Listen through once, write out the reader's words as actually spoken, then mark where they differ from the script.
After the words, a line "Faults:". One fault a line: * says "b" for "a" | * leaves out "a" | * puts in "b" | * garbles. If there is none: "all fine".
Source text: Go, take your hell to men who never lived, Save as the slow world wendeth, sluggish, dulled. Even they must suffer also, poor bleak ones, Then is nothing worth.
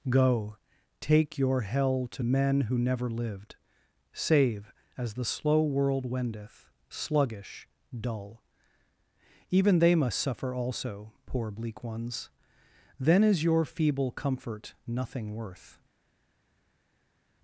Go, take your hell to men who never lived, Save as the slow world wendeth, sluggish, dull. Even they must suffer also, poor bleak ones, Then is your feeble comfort nothing worth.
Faults:
* says "dull" for "dulled"
* puts in "your feeble comfort"